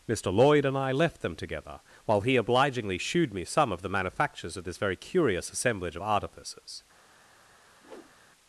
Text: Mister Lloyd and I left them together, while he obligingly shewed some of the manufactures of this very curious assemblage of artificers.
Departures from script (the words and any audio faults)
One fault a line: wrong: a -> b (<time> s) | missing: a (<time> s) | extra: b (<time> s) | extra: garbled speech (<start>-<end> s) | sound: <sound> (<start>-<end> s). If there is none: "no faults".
extra: me (3.3 s)
sound: whoosh (7.8-8.2 s)